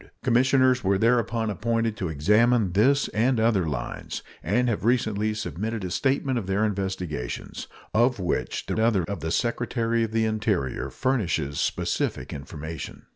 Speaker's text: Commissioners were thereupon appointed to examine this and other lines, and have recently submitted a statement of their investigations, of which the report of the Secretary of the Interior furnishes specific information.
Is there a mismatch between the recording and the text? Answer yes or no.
yes